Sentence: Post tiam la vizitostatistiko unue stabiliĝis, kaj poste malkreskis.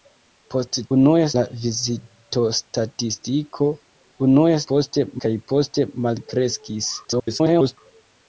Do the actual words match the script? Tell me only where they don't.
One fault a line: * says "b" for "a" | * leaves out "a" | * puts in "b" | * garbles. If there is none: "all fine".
* says "unue" for "tiam"
* says "poste" for "stabiliĝis"
* garbles